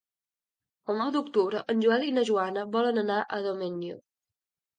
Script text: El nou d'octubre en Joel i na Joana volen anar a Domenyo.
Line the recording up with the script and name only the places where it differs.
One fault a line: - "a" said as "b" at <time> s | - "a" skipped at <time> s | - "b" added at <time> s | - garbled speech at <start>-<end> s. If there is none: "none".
none